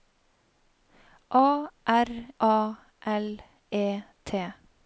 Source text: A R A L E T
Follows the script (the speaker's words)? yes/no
yes